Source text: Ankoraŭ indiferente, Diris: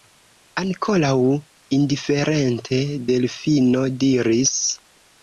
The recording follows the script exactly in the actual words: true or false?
false